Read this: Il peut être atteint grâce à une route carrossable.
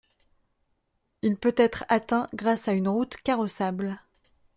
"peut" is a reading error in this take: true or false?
false